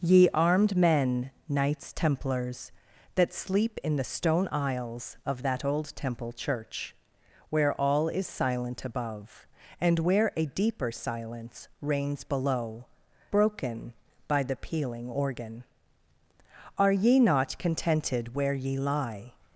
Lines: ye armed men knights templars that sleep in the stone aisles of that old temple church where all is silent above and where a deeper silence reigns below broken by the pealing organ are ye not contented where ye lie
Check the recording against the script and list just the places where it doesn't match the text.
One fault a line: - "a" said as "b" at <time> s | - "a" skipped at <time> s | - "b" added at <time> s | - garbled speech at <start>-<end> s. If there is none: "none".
none